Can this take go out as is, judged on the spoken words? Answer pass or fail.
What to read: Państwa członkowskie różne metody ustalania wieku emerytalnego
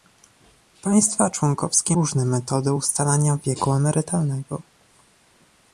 pass